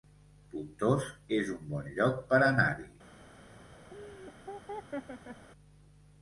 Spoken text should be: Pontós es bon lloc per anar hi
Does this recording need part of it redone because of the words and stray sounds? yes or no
yes